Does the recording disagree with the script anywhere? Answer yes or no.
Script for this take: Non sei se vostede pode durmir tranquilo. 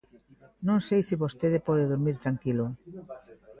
no